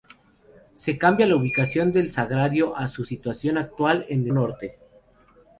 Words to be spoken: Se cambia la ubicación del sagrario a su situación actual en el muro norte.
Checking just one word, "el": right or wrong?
wrong